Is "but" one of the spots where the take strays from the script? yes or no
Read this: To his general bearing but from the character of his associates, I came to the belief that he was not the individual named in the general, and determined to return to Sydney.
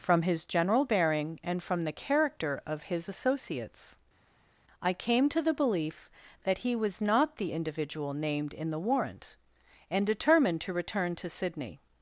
yes